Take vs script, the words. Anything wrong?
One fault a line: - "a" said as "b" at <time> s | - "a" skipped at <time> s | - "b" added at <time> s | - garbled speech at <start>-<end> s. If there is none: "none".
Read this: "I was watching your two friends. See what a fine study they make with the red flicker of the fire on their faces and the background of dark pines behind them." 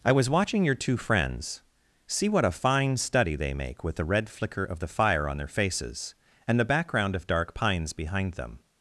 none